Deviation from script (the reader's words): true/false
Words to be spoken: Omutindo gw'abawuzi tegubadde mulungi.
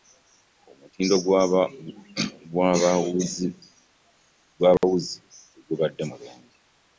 false